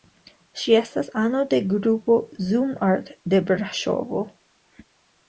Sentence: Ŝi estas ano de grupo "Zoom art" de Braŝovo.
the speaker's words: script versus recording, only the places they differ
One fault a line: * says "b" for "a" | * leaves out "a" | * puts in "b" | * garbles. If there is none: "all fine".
all fine